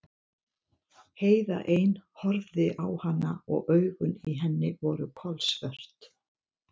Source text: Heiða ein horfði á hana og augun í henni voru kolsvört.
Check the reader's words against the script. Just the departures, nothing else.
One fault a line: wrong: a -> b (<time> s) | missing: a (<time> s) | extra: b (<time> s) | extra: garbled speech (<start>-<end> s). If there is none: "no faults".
no faults